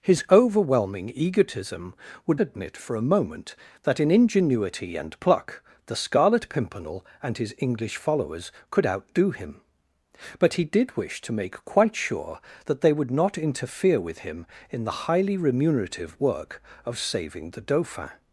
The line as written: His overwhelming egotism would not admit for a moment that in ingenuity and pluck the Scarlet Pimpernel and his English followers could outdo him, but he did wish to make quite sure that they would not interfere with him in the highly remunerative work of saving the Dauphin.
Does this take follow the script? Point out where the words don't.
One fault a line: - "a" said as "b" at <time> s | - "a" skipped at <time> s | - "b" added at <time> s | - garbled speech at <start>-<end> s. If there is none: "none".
- "not" skipped at 2.4 s